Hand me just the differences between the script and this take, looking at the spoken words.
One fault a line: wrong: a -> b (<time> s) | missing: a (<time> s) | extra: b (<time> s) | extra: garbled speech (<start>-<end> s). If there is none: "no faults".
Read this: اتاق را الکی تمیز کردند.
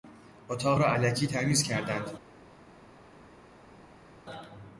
no faults